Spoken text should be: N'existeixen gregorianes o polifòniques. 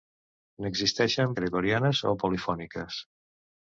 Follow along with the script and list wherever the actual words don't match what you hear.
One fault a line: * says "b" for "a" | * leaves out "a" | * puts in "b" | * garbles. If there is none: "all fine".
all fine